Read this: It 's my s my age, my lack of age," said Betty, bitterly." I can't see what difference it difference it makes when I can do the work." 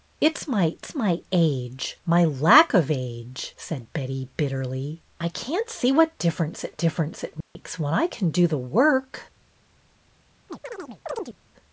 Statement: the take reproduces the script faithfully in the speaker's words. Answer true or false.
true